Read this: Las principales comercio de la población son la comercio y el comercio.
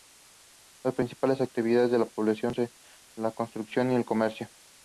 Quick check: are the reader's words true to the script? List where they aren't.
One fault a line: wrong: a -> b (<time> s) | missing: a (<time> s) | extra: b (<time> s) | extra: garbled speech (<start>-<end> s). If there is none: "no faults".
wrong: comercio -> actividades (1.4 s)
wrong: comercio -> construcción (3.3 s)